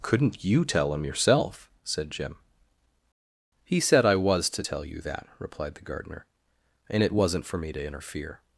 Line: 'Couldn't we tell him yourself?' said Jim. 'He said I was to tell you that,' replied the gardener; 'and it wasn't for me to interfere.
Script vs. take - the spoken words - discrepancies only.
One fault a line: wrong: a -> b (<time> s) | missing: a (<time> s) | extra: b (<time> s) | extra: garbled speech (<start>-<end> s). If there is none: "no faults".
wrong: we -> you (0.4 s)